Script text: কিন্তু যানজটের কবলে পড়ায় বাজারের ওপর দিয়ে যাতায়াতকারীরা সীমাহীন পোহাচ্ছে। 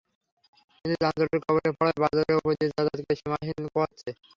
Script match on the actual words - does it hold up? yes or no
yes